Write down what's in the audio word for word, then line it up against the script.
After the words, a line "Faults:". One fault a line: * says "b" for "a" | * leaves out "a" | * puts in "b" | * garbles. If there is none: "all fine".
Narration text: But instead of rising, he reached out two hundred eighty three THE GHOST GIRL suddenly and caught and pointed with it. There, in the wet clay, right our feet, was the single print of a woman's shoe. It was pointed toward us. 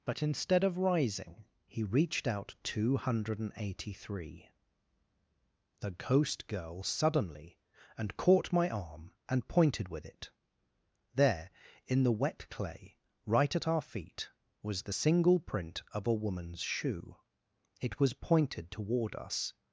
But instead of rising, he reached out two hundred eighty three THE GHOST GIRL suddenly and caught my arm and pointed with it. There, in the wet clay, right at our feet, was the single print of a woman's shoe. It was pointed toward us.
Faults:
* puts in "my arm"
* puts in "at"